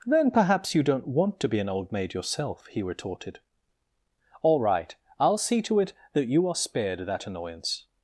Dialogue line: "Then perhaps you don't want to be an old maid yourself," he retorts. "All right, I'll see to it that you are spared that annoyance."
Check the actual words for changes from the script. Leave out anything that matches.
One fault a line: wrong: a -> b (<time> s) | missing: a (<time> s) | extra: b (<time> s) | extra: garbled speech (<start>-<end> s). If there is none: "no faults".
wrong: retorts -> retorted (2.8 s)